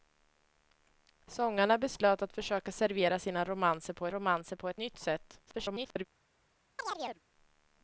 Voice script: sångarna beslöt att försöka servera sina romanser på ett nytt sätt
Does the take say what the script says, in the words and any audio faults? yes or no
no